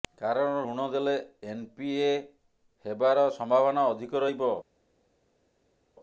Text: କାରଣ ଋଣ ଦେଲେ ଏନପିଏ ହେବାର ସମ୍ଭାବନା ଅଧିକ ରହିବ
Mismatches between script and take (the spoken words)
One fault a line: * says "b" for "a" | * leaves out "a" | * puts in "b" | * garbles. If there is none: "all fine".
all fine